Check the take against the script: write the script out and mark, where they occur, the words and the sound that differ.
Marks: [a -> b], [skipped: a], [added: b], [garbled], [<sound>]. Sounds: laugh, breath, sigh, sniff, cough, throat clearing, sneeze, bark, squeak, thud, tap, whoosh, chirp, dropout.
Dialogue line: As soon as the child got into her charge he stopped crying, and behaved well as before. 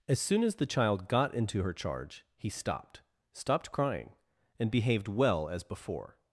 As soon as the child got into her charge he stopped [added: stopped] crying, and behaved well as before.